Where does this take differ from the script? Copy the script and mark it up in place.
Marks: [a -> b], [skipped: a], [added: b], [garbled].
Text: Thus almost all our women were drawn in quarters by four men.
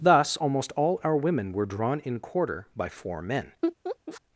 Thus almost all our women were drawn in [quarters -> quarter] by four men.